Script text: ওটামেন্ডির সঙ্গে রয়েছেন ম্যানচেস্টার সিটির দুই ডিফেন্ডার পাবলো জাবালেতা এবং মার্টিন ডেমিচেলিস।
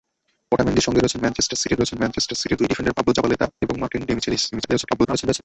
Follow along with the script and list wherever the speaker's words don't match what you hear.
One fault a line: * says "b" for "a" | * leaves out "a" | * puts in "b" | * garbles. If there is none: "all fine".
* puts in "রয়েছেন ম্যানচেস্টার সিটির"
* garbles